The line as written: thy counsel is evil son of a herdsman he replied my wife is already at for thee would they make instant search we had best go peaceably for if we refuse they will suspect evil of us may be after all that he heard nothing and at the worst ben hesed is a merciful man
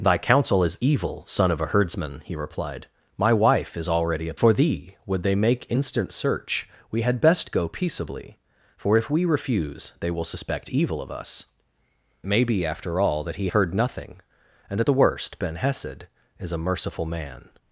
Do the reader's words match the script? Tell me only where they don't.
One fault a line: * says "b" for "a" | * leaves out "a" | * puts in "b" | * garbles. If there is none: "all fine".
all fine